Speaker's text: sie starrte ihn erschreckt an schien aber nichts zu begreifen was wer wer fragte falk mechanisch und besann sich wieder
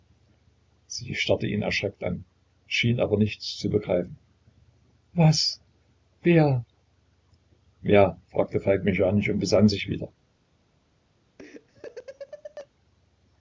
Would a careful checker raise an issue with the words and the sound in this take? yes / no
yes